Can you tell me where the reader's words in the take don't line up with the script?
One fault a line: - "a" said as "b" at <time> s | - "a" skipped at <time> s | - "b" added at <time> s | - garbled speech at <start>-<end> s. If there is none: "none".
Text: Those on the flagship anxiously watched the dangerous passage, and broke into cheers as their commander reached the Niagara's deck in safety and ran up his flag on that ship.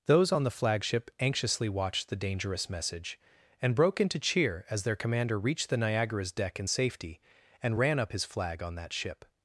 - "passage" said as "message" at 2.7 s
- "cheers" said as "cheer" at 4.2 s